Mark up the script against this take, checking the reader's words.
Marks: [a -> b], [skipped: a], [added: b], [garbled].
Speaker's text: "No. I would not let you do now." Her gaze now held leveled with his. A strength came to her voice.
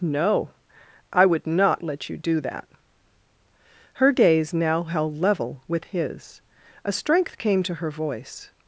"No. I would not let you do [now." -> that] Her gaze now held [leveled -> level] with his. A strength came to her voice.